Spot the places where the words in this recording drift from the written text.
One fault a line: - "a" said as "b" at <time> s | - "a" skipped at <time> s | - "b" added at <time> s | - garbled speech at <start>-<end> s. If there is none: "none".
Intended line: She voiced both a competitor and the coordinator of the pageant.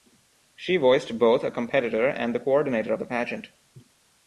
none